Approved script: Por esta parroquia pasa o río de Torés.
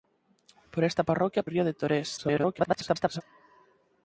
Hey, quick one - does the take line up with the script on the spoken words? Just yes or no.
no